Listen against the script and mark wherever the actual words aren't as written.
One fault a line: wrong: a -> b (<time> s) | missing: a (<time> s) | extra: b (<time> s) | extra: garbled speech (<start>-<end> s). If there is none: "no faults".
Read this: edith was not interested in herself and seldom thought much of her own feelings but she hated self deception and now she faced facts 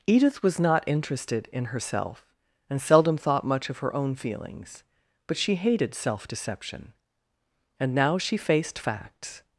no faults